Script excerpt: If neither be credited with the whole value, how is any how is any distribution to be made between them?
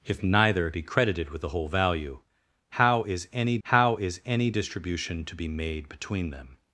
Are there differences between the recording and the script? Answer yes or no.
no